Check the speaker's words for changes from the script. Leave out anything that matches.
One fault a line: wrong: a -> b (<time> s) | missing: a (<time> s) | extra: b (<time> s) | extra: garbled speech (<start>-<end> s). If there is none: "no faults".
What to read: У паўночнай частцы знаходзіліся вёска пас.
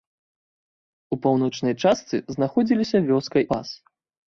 no faults